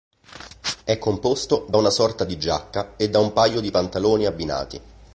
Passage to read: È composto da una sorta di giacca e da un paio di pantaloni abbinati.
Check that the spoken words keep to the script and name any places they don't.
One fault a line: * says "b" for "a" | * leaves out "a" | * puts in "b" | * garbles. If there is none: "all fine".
all fine